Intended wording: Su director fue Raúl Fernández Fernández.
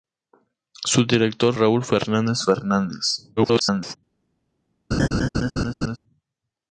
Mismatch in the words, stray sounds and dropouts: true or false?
true